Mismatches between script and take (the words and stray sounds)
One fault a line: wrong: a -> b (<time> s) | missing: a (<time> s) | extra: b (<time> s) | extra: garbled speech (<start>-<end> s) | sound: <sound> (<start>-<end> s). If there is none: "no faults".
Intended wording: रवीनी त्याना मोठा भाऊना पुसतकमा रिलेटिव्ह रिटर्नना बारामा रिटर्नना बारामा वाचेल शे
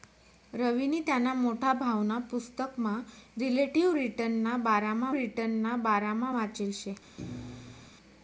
sound: thud (7.2-7.9 s)